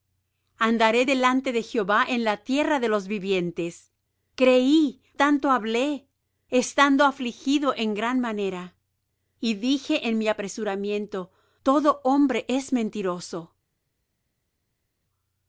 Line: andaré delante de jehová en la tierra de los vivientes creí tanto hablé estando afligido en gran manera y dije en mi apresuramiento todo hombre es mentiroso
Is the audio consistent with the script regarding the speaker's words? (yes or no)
yes